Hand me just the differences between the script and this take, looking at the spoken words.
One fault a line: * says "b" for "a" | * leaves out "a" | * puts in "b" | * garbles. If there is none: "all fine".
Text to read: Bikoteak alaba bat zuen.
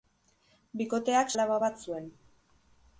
all fine